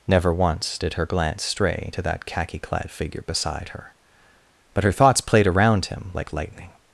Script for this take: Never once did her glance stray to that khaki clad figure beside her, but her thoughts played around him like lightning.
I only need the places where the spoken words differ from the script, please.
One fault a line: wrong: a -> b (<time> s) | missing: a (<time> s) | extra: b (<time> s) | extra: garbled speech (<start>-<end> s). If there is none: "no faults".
no faults